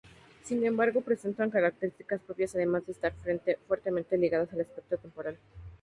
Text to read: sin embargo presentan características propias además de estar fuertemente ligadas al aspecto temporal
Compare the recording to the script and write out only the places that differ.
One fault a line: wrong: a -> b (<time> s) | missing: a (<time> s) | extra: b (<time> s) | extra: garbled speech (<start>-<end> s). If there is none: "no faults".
no faults